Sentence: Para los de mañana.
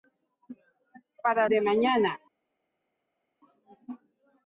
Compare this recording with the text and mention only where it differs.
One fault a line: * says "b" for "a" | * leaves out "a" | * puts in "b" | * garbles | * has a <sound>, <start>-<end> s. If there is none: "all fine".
* leaves out "los"